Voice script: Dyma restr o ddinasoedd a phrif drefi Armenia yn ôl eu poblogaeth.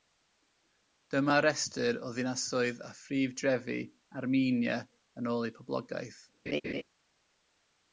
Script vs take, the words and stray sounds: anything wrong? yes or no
yes